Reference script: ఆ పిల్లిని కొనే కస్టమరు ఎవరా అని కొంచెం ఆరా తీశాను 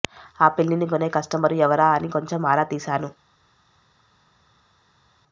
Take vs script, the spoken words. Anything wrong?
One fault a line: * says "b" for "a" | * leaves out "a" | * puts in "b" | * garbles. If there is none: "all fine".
all fine